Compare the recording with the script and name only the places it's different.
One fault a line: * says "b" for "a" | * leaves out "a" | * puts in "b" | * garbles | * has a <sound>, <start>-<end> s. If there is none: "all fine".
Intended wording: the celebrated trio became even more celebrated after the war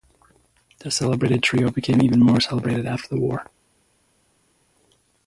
all fine